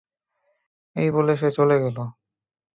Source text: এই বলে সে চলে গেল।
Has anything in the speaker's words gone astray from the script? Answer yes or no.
no